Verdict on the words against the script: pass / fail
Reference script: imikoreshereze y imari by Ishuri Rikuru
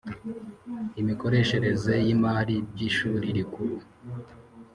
pass